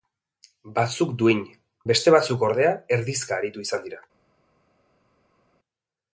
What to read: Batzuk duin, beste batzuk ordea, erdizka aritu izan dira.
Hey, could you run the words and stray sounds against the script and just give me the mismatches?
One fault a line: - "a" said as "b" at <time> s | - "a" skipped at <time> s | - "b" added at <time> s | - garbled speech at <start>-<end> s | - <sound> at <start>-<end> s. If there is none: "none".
none